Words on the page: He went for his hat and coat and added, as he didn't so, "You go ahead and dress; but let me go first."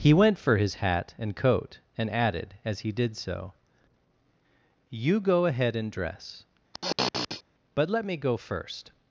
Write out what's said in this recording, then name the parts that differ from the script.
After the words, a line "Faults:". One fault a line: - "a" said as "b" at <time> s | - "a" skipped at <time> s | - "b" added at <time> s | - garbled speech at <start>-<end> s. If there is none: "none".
He went for his hat and coat and added, as he did so, "You go ahead and dress; but let me go first."
Faults:
- "didn't" said as "did" at 2.9 s